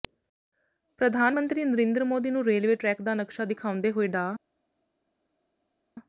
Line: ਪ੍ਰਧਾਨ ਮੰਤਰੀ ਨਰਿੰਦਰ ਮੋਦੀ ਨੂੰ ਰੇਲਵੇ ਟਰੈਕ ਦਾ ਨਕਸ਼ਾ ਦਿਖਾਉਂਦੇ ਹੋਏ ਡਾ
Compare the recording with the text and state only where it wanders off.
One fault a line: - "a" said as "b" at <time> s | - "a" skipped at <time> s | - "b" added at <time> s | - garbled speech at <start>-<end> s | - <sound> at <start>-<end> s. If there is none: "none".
none